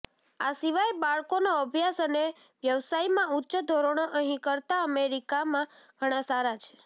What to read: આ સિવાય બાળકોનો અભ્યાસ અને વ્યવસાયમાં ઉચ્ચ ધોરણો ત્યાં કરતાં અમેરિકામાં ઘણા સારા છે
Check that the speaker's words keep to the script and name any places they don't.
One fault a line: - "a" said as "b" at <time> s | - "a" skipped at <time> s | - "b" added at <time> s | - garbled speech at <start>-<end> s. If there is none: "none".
- "ત્યાં" said as "અહીં" at 4.2 s